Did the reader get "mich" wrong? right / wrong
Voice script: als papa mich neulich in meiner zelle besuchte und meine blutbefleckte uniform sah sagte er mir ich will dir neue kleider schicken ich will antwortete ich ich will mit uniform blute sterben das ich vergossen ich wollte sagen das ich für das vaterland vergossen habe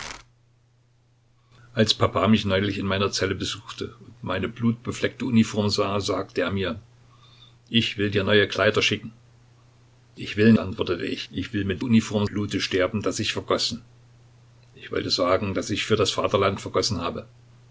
right